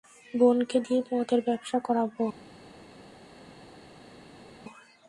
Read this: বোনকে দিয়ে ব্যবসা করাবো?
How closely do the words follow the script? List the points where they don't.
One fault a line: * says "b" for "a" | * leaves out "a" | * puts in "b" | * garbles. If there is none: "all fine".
* puts in "মদের"